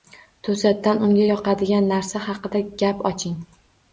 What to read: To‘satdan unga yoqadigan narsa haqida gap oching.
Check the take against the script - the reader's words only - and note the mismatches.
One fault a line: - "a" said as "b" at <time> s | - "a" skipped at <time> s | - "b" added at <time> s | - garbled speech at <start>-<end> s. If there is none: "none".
none